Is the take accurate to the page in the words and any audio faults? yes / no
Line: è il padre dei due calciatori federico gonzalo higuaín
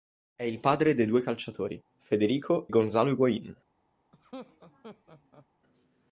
no